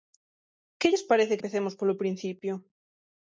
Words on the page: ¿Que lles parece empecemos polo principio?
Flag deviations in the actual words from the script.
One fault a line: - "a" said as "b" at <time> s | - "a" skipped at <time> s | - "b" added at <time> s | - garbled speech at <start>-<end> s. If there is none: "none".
none